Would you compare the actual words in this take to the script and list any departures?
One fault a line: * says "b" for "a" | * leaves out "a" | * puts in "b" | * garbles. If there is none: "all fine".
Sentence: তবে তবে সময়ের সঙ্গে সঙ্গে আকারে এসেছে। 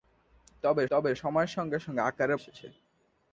all fine